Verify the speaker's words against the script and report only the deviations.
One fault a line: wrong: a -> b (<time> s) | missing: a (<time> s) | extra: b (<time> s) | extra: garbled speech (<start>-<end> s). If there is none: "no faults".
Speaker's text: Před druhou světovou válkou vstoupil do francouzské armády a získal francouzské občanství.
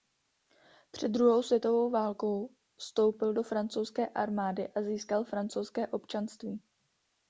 no faults